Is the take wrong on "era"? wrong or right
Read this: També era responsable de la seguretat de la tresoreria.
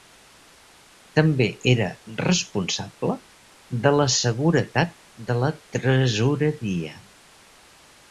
right